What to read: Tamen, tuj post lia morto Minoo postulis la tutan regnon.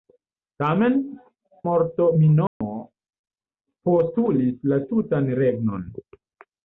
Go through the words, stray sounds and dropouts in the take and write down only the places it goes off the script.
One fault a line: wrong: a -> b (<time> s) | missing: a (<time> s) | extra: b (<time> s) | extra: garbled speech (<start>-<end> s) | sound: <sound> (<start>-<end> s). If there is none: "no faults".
missing: tuj post lia (0.9 s)
sound: dropout (2.5-2.6 s)